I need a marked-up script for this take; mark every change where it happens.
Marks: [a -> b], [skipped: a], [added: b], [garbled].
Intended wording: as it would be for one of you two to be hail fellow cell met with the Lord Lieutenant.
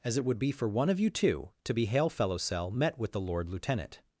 as it would be for one of you two to be hail fellow cell met with the Lord Lieutenant.